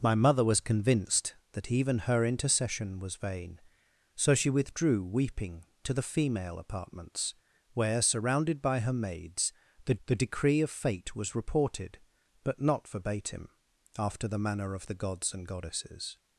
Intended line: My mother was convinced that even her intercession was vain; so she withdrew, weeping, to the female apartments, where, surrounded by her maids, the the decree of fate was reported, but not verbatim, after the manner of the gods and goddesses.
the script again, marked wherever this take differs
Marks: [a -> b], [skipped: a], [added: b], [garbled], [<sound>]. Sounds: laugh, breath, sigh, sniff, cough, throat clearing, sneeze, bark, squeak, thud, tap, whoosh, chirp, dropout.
My mother was convinced that even her intercession was vain; so she withdrew, weeping, to the female apartments, where, surrounded by her maids, the the decree of fate was reported, but not verbatim, after the manner of the gods and goddesses.